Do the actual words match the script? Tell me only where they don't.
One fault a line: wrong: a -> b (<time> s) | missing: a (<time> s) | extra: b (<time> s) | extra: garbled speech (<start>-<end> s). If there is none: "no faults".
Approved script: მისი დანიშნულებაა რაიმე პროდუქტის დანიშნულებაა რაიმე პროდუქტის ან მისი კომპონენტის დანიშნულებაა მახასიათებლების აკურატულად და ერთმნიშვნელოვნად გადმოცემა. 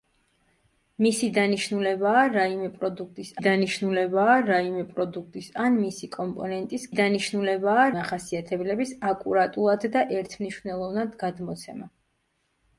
no faults